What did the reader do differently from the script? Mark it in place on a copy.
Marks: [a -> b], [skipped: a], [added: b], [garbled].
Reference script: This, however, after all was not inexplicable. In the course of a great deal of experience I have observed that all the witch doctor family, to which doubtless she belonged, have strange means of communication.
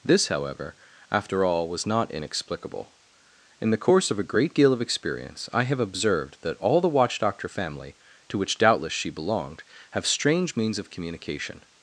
This, however, after all was not inexplicable. In the course of a great deal of experience I have observed that all the [witch -> watch] doctor family, to which doubtless she belonged, have strange means of communication.